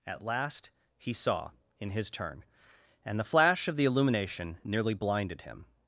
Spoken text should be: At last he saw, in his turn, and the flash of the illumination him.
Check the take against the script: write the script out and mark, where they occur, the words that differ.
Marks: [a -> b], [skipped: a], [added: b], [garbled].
At last he saw, in his turn, and the flash of the illumination [added: nearly blinded] him.